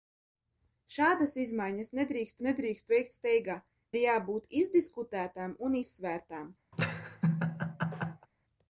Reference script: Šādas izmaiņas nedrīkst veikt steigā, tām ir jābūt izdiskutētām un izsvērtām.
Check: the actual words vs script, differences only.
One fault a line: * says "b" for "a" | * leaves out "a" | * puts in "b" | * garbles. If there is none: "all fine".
* puts in "nedrīkst"
* leaves out "tām"